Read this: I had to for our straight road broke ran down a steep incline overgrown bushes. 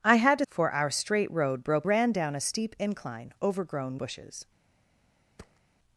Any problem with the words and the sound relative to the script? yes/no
yes